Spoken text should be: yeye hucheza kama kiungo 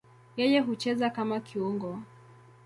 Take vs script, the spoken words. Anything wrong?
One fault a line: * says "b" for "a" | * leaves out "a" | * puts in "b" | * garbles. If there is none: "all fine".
all fine